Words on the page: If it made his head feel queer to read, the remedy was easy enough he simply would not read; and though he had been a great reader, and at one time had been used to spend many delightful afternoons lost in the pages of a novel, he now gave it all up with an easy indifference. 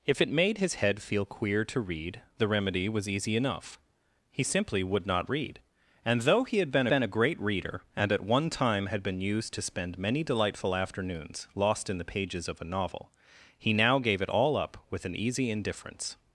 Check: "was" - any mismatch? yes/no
no